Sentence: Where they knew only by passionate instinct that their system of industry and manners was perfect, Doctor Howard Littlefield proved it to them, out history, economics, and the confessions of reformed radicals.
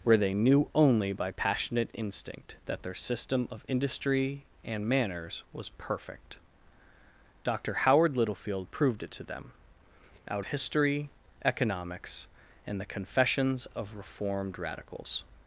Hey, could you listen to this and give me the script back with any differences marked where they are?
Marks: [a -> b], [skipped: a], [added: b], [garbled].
Where they knew only by passionate instinct that their system of industry and manners was perfect, Doctor Howard Littlefield proved it to them, out history, economics, and the confessions of reformed radicals.